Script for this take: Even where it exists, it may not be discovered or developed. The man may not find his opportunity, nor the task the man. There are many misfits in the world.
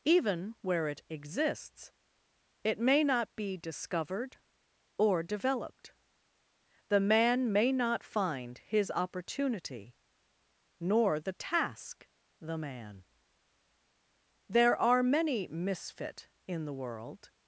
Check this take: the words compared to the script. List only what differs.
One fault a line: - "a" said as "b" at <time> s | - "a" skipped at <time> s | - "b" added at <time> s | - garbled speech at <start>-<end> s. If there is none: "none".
- "misfits" said as "misfit" at 15.5 s